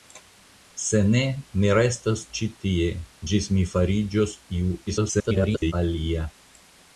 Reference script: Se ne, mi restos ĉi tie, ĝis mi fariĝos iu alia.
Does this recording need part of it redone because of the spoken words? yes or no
yes